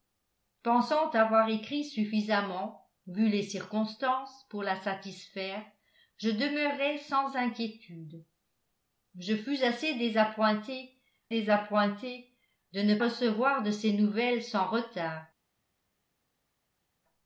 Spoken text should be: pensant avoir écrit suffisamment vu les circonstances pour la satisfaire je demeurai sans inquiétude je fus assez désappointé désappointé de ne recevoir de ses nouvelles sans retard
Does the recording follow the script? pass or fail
pass